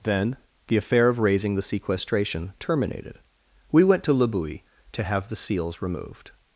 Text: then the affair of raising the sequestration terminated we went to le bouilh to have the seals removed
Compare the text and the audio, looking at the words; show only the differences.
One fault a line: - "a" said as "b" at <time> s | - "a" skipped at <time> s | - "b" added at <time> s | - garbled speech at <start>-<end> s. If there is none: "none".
none